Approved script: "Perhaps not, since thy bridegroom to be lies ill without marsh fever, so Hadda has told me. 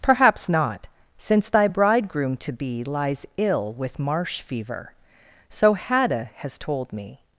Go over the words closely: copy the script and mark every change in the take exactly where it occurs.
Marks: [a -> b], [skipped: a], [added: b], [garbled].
"Perhaps not, since thy bridegroom to be lies ill [without -> with] marsh fever, so Hadda has told me.